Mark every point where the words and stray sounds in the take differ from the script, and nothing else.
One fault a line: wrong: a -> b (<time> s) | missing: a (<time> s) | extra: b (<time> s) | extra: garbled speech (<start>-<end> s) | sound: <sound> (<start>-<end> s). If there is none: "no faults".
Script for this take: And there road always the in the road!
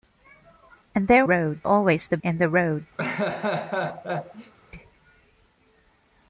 sound: laugh (3.0-4.5 s)